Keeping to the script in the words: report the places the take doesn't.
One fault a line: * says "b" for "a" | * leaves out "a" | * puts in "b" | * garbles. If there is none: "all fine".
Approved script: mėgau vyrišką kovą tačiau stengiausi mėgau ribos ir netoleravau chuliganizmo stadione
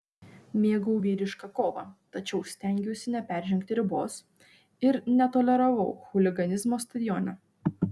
* says "neperžengti" for "mėgau"